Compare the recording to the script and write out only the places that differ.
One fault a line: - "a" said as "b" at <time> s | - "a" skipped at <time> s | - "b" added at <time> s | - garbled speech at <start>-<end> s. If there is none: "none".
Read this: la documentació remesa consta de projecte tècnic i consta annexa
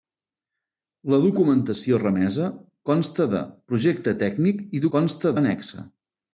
none